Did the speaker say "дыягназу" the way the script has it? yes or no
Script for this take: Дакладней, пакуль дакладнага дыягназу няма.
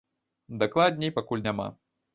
no